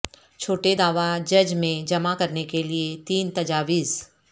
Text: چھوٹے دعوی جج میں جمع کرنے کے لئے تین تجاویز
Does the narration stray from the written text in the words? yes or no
no